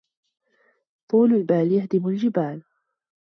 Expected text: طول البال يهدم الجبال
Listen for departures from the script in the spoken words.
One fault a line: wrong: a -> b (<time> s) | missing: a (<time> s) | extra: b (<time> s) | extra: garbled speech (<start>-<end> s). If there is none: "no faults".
no faults